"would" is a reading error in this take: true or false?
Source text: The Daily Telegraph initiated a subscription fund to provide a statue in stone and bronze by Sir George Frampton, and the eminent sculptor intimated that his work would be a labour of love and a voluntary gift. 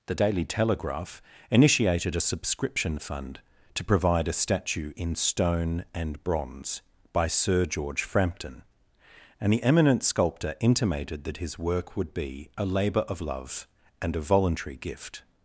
false